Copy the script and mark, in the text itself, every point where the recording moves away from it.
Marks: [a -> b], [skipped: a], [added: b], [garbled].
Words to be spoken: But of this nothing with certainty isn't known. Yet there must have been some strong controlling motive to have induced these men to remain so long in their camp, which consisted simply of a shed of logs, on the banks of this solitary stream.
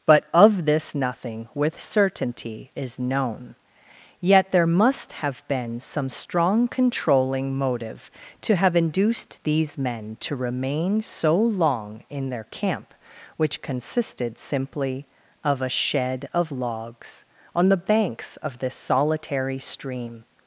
But of this nothing with certainty [isn't -> is] known. Yet there must have been some strong controlling motive to have induced these men to remain so long in their camp, which consisted simply of a shed of logs, on the banks of this solitary stream.